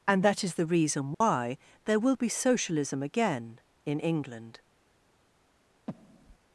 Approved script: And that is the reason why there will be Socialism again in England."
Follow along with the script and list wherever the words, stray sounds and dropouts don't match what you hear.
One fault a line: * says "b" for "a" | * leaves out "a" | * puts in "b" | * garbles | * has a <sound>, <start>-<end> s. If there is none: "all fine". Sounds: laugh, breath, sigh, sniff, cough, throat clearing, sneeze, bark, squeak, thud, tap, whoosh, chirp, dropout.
* has a dropout, 1.1-1.2 s
* has a breath, 5.9-6.4 s